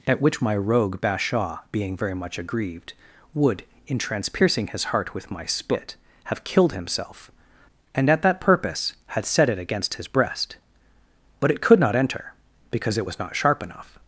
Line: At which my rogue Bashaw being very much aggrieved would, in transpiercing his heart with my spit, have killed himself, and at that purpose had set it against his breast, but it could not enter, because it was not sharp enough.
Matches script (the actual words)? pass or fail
pass